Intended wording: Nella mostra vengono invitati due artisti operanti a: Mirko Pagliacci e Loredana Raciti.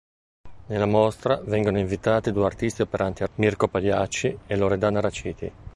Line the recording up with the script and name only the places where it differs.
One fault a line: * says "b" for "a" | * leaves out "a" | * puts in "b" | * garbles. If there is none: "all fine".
all fine